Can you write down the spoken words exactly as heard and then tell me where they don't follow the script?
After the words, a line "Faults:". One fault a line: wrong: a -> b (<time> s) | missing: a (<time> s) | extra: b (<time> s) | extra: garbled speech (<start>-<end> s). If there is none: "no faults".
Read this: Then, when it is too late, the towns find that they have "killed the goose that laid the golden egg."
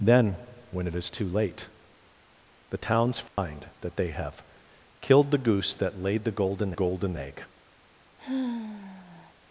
Then, when it is too late, the towns find that they have "killed the goose that laid the golden golden egg."
Faults:
extra: golden (6.7 s)